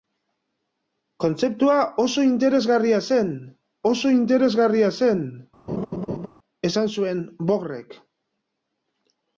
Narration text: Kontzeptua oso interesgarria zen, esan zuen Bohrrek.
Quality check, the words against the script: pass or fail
fail